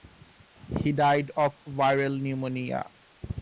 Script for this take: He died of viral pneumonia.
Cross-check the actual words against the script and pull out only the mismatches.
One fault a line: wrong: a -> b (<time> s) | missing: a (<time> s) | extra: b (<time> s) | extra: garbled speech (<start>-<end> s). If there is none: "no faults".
no faults